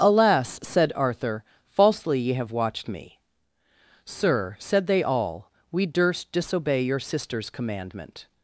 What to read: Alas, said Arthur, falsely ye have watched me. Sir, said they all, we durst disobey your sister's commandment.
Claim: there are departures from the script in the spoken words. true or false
false